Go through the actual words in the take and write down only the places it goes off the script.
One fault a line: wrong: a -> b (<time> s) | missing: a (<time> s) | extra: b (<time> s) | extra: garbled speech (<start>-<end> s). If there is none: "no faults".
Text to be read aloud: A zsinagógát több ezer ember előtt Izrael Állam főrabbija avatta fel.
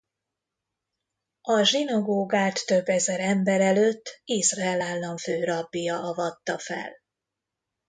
no faults